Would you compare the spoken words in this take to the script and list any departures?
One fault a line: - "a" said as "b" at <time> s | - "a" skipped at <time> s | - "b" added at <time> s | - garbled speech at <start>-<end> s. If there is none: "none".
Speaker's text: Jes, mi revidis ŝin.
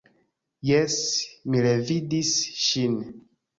none